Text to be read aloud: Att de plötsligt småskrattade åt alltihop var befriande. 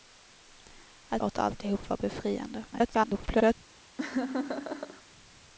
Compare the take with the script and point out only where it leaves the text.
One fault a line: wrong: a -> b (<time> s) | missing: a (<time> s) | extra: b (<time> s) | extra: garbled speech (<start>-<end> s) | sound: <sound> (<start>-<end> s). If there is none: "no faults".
missing: de plötsligt småskrattade (1.2 s)
extra: garbled speech (2.7-3.6 s)
sound: laugh (4.0-5.0 s)